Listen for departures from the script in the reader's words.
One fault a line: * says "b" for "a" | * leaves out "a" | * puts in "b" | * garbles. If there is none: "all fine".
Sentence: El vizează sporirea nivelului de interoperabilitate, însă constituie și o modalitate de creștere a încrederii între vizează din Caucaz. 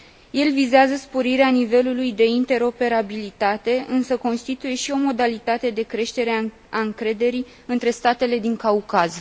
* says "statele" for "vizează"